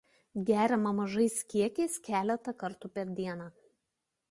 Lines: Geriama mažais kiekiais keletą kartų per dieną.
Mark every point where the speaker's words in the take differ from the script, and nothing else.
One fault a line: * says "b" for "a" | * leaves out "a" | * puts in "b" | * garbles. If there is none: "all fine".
all fine